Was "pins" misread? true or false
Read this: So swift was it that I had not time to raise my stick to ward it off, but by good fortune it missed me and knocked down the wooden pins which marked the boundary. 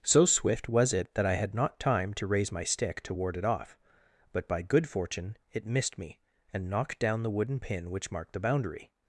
true